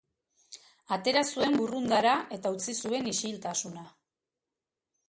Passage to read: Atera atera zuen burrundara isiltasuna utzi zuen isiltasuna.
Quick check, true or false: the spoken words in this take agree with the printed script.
false